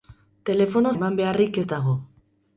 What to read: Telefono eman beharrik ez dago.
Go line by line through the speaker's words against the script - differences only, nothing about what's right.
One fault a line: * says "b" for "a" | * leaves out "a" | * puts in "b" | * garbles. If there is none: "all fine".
all fine